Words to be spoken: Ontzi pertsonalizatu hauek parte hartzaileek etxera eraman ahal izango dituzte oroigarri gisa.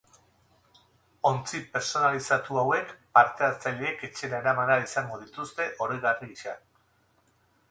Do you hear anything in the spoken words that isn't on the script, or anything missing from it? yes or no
no